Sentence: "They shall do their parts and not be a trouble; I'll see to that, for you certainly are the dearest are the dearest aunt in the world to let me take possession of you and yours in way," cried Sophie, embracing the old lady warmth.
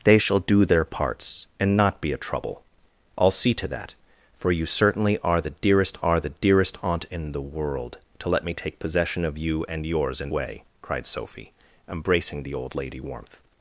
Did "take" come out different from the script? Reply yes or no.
no